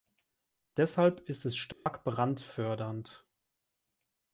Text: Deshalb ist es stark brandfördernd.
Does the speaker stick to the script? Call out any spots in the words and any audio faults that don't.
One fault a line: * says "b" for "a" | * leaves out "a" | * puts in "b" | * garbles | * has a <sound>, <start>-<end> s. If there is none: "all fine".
* has a dropout, 1.7-1.9 s